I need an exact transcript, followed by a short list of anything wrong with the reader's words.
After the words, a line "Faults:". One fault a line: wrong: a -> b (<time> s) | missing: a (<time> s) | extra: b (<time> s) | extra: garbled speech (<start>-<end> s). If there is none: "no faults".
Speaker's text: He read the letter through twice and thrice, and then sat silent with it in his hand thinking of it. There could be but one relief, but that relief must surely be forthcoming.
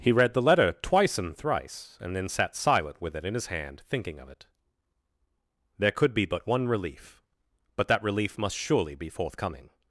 He read the letter twice and thrice, and then sat silent with it in his hand thinking of it. There could be but one relief, but that relief must surely be forthcoming.
Faults:
missing: through (0.7 s)